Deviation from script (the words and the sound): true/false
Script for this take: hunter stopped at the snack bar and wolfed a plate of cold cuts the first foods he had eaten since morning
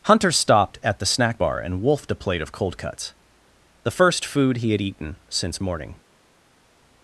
true